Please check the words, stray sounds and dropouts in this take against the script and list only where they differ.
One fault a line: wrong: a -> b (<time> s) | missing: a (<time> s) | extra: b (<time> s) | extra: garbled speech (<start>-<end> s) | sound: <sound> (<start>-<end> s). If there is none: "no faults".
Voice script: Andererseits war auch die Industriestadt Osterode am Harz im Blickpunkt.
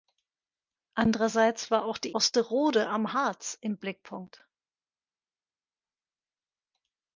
missing: Industriestadt (2.1 s)